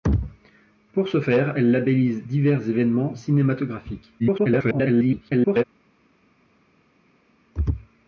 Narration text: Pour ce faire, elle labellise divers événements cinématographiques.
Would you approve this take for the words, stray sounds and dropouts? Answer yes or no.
no